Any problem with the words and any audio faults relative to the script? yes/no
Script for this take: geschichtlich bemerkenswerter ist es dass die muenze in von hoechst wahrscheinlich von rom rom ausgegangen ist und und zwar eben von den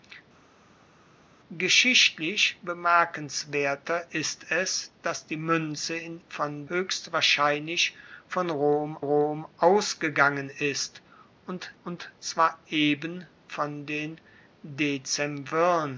no